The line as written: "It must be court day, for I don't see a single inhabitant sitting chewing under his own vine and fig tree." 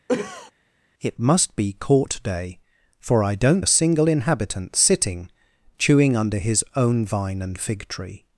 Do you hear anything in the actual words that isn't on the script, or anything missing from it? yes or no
yes